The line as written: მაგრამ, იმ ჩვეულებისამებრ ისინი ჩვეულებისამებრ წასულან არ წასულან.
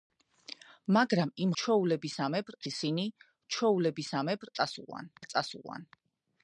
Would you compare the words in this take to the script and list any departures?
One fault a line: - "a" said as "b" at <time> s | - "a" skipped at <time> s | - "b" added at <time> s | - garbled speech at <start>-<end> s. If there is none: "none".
none